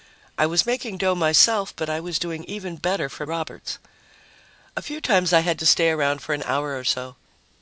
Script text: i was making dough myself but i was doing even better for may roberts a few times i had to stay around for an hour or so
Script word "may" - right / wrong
wrong